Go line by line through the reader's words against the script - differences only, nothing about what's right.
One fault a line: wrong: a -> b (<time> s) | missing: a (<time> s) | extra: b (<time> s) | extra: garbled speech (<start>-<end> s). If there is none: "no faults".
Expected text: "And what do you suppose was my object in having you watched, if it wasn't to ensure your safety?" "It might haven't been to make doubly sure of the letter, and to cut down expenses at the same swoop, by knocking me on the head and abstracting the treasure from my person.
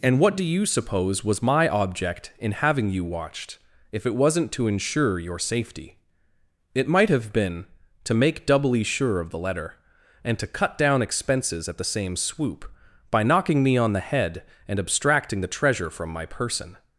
wrong: haven't -> have (7.1 s)